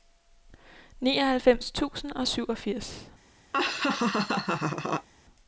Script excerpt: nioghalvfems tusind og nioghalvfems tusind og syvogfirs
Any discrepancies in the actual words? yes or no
yes